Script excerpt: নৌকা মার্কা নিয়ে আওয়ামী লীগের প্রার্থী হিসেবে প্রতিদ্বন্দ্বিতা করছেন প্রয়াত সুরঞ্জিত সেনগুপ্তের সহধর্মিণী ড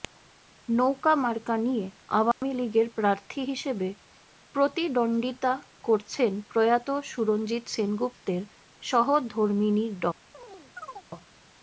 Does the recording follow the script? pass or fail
pass